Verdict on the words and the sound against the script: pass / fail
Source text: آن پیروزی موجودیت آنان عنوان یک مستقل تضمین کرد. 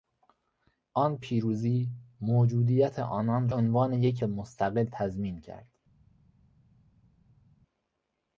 pass